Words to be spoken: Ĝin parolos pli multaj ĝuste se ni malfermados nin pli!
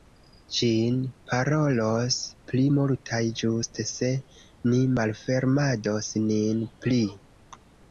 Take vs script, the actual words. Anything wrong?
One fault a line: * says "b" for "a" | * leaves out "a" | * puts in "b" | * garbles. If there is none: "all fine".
all fine